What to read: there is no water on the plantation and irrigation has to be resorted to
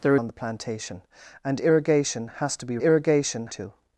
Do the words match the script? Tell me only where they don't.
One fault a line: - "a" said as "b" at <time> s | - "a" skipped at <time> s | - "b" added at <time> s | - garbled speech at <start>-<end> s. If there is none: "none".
- "is no water" skipped at 0.1 s
- "resorted" said as "irrigation" at 2.8 s